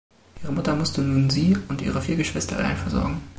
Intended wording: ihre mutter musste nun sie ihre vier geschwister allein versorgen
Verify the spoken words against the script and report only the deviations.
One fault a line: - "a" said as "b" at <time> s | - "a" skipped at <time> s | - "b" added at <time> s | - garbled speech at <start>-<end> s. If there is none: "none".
- "und" added at 1.7 s